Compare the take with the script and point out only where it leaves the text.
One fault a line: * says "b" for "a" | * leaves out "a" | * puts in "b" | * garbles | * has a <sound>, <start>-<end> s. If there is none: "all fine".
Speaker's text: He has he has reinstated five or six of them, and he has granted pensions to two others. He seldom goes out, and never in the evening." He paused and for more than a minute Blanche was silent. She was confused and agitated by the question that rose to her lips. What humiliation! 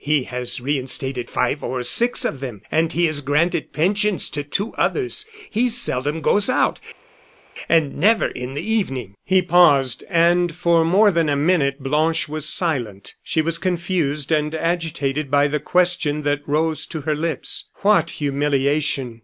* leaves out "he has"